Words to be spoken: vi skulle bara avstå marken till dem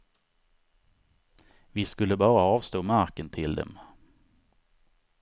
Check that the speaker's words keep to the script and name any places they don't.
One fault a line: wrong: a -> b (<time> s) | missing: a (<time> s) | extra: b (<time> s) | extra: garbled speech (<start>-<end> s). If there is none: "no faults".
no faults